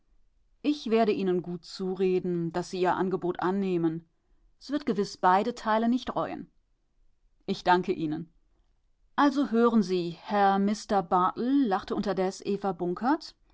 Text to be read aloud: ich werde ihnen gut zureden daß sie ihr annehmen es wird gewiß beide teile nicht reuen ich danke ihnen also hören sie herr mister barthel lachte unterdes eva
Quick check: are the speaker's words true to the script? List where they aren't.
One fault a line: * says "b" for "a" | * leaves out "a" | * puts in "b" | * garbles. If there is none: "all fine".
* puts in "angebot"